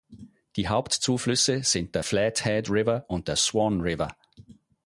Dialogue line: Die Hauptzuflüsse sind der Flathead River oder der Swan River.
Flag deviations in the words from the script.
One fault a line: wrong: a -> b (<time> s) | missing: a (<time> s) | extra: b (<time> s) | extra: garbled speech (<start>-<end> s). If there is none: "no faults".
wrong: oder -> und (3.1 s)